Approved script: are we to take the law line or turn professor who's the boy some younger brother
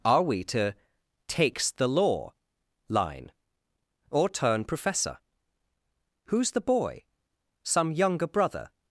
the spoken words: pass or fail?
fail